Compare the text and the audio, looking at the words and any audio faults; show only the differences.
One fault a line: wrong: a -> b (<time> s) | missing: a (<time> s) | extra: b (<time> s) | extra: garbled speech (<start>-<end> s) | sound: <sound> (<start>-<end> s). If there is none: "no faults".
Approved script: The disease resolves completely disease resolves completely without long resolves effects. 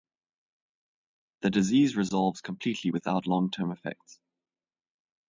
missing: disease resolves completely (2.9 s)
wrong: resolves -> term (3.5 s)